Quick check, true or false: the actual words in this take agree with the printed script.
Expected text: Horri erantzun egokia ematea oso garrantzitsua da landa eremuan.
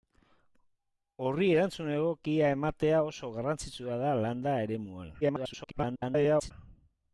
false